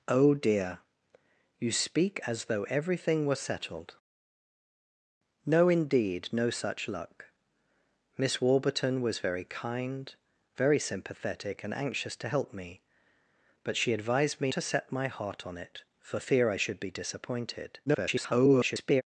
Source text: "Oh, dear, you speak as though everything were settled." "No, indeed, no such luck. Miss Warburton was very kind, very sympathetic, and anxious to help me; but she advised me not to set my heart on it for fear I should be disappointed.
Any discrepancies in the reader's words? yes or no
yes